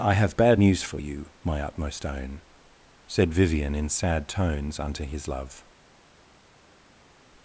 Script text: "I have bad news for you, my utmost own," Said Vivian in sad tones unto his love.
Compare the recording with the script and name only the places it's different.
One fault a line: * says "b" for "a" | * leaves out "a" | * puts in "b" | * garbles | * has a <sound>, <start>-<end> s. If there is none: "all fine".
all fine